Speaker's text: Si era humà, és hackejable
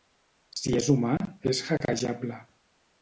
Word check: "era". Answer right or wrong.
wrong